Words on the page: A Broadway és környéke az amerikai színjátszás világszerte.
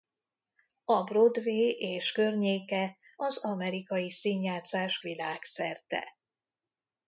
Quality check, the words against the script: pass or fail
pass